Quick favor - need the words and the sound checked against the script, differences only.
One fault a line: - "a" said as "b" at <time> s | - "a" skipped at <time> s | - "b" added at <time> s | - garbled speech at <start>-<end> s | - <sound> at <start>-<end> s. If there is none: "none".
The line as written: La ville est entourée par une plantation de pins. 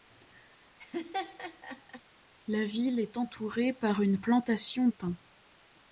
- laugh at 0.8-2.0 s
- "de" skipped at 4.9 s